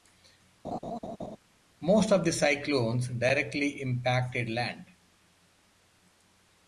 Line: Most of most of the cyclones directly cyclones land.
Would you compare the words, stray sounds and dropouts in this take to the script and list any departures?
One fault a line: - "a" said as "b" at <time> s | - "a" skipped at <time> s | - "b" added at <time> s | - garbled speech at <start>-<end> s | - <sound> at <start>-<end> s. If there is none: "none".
- laugh at 0.6-1.4 s
- "most of" skipped at 2.2 s
- "cyclones" said as "impacted" at 3.8 s